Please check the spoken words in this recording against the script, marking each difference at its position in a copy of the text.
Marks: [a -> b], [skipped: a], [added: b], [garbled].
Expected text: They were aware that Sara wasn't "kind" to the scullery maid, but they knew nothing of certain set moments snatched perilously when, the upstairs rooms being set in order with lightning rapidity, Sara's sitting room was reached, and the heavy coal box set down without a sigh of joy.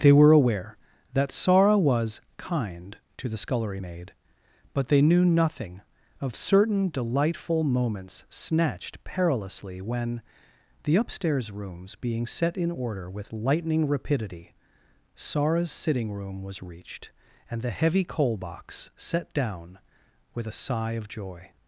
They were aware that Sara [wasn't -> was] "kind" to the scullery maid, but they knew nothing of certain [set -> delightful] moments snatched perilously when, the upstairs rooms being set in order with lightning rapidity, Sara's sitting room was reached, and the heavy coal box set down [without -> with] a sigh of joy.